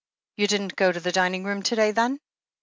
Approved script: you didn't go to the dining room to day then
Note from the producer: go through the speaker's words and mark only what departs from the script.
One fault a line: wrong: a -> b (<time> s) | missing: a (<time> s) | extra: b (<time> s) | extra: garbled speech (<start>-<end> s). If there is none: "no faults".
no faults